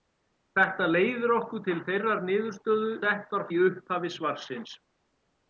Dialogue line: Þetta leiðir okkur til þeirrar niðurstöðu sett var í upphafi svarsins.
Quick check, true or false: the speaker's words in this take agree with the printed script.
true